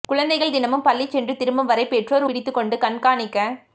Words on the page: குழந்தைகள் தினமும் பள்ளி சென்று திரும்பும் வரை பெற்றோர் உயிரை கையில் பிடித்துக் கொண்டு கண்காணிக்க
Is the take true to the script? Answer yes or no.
no